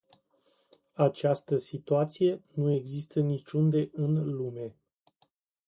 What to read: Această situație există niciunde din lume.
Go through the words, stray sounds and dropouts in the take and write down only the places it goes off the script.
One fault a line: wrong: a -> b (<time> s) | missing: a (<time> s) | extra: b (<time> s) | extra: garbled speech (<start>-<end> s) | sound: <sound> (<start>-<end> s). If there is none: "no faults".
extra: nu (2.5 s)
wrong: din -> în (3.9 s)